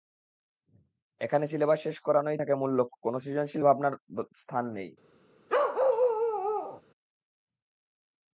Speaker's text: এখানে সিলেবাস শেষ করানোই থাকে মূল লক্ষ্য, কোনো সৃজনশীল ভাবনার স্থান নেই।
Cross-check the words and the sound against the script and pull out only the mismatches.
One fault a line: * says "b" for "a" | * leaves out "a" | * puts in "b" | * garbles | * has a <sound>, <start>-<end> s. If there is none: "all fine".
* has a bark, 5.5-6.8 s